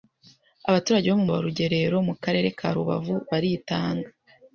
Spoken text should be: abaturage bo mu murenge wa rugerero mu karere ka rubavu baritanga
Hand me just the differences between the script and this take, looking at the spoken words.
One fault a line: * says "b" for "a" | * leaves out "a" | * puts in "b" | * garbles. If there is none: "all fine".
* leaves out "murenge"